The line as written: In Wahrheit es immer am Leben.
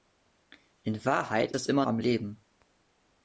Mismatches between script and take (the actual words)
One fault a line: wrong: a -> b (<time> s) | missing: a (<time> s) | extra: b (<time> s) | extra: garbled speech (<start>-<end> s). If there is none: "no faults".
no faults